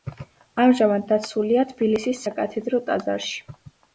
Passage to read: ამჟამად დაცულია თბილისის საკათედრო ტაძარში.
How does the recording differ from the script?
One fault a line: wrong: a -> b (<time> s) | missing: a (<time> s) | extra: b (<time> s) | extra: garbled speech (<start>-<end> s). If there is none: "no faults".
no faults